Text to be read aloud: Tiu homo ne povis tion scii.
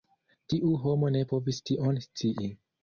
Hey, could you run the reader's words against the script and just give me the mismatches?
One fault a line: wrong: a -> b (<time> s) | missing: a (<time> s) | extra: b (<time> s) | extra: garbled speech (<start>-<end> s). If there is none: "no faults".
no faults